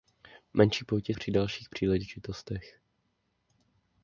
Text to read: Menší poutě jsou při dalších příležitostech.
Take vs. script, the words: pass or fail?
fail